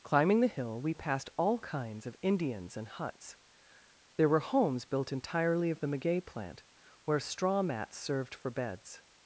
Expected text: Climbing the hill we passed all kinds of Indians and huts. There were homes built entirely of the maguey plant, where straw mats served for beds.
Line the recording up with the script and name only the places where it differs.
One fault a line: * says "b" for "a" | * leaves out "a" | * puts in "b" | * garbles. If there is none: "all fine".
all fine